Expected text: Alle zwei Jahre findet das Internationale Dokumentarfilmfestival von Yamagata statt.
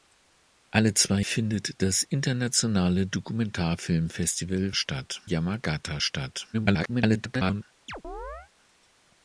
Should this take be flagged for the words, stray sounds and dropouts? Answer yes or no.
yes